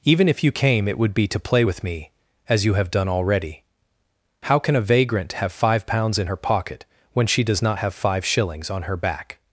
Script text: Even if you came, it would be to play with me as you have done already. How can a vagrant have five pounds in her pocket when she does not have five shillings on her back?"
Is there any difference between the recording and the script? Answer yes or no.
no